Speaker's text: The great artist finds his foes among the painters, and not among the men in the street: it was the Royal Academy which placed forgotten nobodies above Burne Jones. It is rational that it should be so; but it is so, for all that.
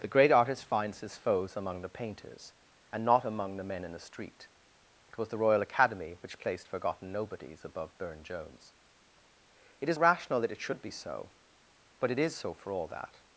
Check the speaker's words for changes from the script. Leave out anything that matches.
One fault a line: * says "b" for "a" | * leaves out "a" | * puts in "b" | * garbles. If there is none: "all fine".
all fine